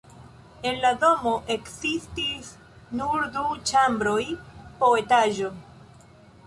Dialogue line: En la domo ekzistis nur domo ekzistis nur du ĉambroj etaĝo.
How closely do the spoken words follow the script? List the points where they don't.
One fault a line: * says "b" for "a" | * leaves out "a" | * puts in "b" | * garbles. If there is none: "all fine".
* leaves out "domo ekzistis nur"
* puts in "po"